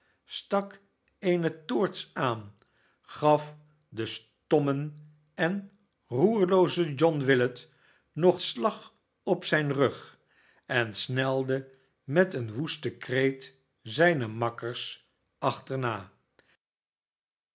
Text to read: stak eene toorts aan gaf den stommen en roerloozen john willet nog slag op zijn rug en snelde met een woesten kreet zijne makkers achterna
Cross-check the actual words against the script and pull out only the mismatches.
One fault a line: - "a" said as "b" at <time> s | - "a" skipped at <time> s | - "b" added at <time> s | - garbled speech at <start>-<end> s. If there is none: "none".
none